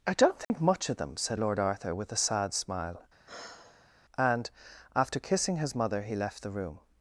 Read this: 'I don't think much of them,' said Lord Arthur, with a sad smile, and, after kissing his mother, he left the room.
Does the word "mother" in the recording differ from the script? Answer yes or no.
no